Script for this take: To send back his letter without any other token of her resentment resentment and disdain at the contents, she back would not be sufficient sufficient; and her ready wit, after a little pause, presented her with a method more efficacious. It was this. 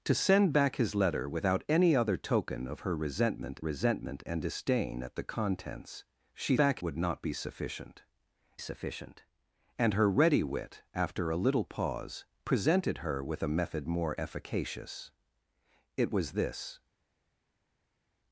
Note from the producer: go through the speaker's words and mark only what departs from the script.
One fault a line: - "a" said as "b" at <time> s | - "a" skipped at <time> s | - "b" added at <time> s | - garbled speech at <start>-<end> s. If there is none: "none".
none